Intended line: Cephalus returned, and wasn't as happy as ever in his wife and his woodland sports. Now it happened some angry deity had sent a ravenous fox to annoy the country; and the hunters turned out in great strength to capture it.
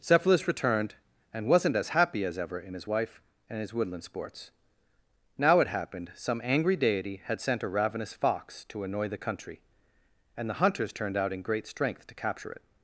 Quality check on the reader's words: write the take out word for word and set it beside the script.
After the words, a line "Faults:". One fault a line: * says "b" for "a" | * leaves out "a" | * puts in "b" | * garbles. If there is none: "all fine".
Cephalus returned, and wasn't as happy as ever in his wife and his woodland sports. Now it happened some angry deity had sent a ravenous fox to annoy the country; and the hunters turned out in great strength to capture it.
Faults:
all fine